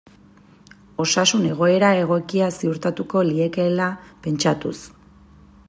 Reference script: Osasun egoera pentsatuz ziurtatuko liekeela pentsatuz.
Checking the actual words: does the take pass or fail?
fail